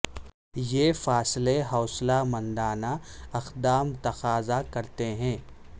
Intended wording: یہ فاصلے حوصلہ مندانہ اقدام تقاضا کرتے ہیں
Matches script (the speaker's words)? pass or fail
pass